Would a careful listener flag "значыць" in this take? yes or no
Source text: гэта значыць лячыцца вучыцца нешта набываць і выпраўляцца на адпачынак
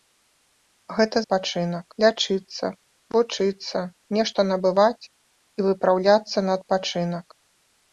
yes